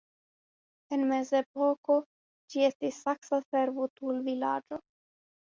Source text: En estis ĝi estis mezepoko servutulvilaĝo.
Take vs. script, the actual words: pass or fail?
fail